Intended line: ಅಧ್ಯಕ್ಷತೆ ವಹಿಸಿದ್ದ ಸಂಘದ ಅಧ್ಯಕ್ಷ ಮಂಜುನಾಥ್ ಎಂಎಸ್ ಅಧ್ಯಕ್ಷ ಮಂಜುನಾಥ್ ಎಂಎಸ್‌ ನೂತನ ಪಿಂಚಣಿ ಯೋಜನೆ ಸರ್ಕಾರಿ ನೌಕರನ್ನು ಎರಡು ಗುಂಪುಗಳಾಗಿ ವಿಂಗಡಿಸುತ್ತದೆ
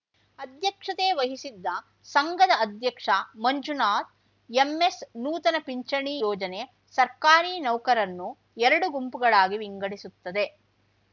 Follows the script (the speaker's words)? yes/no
no